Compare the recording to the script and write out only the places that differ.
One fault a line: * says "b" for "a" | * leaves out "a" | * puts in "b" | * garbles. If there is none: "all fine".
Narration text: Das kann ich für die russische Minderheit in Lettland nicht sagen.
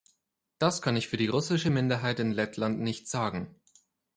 all fine